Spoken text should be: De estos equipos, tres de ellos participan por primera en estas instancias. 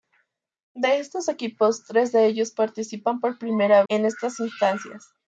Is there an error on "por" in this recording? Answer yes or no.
no